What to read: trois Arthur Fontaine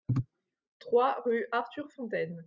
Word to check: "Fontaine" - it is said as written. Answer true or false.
true